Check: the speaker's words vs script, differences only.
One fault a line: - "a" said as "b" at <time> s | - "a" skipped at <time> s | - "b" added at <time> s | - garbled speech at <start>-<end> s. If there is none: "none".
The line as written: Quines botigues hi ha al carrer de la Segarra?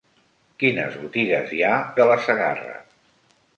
- "al carrer" skipped at 1.7 s